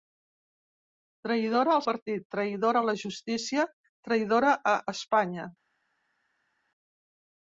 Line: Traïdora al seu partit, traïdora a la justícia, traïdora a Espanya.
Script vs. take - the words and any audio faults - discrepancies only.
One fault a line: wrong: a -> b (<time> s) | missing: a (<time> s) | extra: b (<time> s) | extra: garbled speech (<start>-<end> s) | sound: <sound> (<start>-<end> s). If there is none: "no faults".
missing: seu (1.8 s)